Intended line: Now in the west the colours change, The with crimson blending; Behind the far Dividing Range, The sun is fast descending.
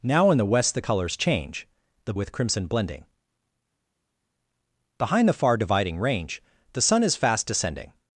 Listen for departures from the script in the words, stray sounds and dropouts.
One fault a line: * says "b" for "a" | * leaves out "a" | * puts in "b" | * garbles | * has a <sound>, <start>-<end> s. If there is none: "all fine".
all fine